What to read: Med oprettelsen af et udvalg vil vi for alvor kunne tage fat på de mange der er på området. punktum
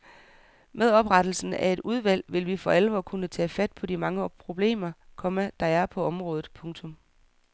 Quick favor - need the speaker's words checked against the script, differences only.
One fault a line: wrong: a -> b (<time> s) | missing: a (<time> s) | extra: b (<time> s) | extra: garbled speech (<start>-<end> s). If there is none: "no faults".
extra: problemer komma (4.3 s)